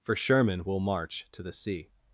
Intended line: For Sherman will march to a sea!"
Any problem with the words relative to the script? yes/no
yes